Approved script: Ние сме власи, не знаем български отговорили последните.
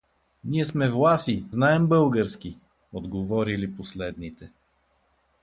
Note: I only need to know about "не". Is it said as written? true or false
false